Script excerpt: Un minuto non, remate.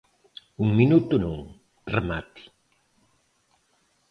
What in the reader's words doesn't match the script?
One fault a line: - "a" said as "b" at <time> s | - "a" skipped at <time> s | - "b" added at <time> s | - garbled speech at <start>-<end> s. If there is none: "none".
none